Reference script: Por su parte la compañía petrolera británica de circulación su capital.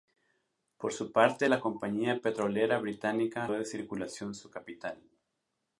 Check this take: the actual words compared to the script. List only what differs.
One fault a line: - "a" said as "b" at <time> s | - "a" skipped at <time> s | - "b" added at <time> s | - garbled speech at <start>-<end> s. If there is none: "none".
none